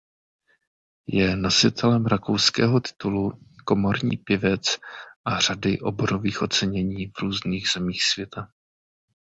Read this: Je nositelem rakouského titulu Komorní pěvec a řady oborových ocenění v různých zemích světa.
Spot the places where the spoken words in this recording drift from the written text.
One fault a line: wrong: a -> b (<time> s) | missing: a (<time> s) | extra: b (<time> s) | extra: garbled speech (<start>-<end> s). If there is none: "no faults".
no faults